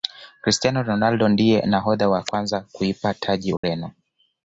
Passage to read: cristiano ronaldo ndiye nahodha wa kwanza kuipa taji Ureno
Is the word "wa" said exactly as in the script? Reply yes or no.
yes